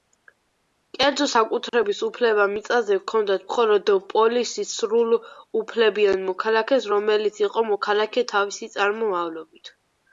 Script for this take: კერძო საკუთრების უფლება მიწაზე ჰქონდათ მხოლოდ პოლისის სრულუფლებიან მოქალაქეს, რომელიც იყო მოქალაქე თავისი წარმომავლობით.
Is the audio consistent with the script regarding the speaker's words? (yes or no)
yes